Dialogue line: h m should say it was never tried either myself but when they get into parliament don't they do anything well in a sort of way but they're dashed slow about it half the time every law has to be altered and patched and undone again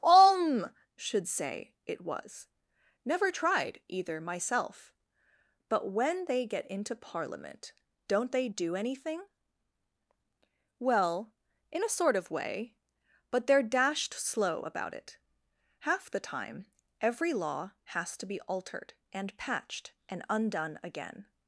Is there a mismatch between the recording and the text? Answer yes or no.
yes